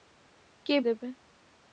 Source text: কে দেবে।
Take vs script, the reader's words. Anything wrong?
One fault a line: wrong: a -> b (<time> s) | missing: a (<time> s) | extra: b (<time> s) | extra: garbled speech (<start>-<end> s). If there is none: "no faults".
no faults